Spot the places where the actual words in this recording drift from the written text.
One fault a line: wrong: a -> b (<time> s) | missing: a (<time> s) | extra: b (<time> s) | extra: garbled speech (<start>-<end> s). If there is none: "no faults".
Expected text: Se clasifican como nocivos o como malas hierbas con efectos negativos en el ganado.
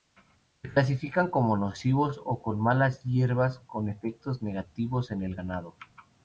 no faults